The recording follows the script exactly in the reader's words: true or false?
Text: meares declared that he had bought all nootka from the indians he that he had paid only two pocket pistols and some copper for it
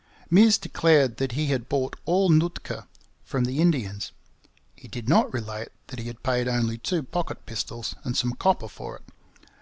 false